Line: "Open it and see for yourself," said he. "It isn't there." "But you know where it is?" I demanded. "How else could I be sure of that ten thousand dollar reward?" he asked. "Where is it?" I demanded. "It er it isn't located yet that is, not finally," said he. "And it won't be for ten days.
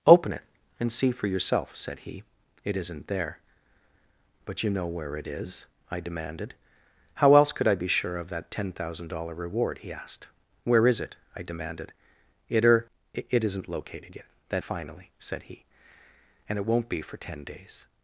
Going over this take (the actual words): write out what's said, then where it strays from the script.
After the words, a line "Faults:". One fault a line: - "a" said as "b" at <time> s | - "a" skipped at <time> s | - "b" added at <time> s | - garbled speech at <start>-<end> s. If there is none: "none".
"Open it and see for yourself," said he. "It isn't there." "But you know where it is?" I demanded. "How else could I be sure of that ten thousand dollar reward?" he asked. "Where is it?" I demanded. "It er it isn't located yet that finally," said he. "And it won't be for ten days.
Faults:
- "is not" skipped at 14.6 s